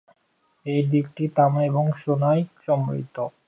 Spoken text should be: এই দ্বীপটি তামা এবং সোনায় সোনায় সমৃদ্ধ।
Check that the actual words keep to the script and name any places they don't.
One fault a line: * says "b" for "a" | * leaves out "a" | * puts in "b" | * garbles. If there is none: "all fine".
* leaves out "সোনায়"